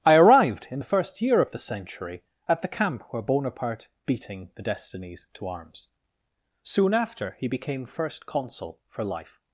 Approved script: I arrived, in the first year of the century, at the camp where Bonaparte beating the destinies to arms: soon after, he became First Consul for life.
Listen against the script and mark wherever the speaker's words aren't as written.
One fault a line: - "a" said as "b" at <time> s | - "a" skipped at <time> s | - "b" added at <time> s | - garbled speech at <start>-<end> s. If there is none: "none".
none